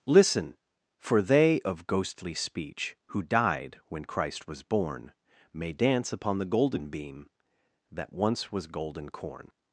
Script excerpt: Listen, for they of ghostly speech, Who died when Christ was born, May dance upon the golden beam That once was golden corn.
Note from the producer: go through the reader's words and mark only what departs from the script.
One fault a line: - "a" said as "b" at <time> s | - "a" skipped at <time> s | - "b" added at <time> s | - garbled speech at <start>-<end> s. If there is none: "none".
none